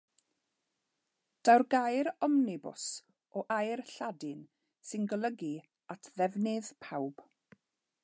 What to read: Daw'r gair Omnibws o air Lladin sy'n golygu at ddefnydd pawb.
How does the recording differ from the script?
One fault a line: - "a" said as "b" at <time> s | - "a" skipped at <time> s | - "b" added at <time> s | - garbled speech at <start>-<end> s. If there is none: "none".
none